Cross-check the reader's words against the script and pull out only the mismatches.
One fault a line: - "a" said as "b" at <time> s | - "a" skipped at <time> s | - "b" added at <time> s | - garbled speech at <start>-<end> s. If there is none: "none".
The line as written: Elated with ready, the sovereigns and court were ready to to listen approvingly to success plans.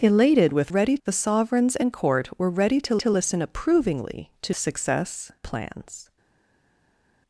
none